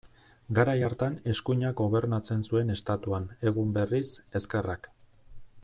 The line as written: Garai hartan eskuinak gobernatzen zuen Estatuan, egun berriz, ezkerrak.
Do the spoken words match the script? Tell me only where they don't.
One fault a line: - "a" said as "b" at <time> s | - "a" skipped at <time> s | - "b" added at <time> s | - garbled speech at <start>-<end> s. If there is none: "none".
none